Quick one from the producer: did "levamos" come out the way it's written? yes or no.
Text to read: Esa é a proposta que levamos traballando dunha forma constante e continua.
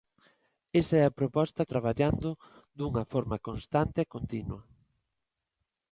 no